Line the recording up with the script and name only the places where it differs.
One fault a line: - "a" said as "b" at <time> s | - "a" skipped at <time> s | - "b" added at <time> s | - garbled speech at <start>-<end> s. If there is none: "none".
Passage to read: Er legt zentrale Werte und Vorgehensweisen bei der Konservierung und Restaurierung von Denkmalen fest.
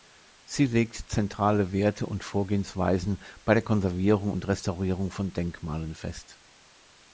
- "Er" said as "Sie" at 0.4 s